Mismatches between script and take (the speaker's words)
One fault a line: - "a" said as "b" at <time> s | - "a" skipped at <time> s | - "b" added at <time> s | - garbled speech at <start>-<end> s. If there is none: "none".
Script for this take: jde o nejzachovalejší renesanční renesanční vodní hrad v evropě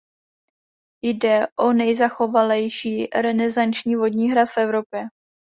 - "renesanční" skipped at 4.0 s